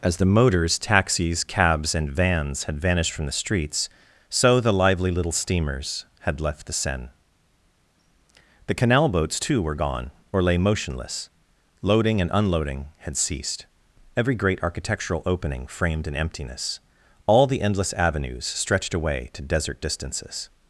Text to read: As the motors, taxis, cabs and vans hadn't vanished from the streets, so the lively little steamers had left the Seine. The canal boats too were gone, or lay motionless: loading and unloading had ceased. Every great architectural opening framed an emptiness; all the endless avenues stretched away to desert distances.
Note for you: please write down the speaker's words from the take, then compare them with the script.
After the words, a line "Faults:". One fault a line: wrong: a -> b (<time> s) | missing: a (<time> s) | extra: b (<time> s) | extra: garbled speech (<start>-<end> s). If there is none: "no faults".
As the motors, taxis, cabs and vans had vanished from the streets, so the lively little steamers had left the Seine. The canal boats too were gone, or lay motionless: loading and unloading had ceased. Every great architectural opening framed an emptiness; all the endless avenues stretched away to desert distances.
Faults:
wrong: hadn't -> had (2.6 s)